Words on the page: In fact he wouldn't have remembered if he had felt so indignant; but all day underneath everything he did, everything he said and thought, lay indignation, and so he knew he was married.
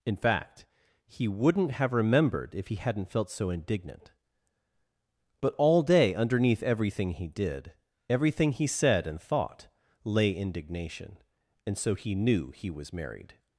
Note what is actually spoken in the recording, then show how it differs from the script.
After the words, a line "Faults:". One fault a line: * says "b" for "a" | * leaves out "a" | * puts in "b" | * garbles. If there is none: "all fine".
In fact he wouldn't have remembered if he hadn't felt so indignant; but all day underneath everything he did, everything he said and thought, lay indignation, and so he knew he was married.
Faults:
* says "hadn't" for "had"